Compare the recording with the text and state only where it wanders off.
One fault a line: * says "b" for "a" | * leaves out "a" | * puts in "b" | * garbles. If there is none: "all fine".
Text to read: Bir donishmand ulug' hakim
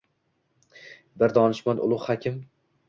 all fine